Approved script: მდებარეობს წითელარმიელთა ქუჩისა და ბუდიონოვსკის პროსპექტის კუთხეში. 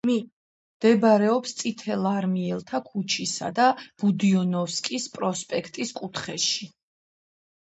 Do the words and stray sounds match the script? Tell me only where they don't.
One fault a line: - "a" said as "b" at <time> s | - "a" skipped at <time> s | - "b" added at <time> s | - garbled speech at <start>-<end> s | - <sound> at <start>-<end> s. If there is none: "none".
none